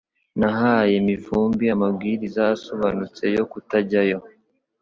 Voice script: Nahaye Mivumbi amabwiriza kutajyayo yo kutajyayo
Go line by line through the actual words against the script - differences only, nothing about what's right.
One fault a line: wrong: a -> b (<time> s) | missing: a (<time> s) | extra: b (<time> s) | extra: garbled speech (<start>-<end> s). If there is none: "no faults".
wrong: kutajyayo -> asobanutse (2.5 s)